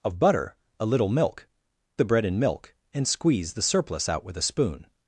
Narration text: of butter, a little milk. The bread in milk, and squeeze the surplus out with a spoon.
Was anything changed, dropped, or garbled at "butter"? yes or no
no